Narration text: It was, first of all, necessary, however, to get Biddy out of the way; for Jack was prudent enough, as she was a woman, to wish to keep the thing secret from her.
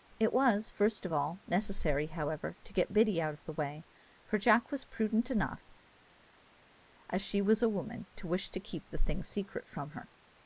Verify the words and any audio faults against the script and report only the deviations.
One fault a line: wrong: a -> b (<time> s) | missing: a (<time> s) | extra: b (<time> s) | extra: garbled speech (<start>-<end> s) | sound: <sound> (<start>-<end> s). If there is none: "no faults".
no faults